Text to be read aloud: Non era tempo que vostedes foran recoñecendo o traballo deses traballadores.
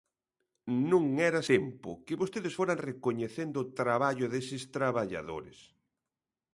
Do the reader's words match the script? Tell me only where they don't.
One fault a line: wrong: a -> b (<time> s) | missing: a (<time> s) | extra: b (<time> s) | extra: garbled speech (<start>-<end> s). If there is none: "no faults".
no faults